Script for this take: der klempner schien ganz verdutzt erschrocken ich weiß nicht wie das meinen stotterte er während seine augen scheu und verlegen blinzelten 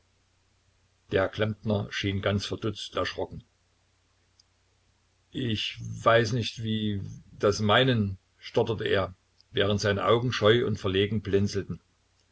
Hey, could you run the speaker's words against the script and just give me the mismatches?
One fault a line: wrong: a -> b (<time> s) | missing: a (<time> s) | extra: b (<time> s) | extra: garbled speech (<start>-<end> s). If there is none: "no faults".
no faults